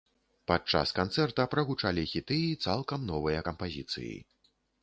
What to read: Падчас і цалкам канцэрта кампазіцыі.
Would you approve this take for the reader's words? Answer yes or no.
no